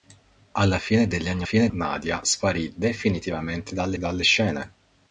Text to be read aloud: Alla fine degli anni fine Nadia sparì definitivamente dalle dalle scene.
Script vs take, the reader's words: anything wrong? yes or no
no